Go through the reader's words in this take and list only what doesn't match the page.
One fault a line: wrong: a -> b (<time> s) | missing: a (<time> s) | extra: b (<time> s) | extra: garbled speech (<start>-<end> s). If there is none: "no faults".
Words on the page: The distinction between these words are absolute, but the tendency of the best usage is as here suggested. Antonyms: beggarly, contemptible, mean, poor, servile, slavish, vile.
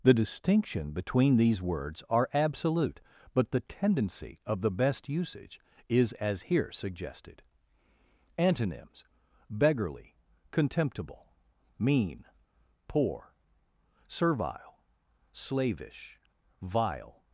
no faults